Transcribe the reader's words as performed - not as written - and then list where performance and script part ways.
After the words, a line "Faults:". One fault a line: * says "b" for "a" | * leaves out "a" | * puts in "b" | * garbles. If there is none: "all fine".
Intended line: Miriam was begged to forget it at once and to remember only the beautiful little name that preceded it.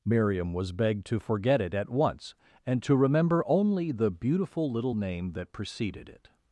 Miriam was begged to forget it at once and to remember only the beautiful little name that preceded it.
Faults:
all fine